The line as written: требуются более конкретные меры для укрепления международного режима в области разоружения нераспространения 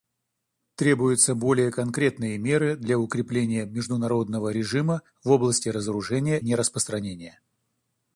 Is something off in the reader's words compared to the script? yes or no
no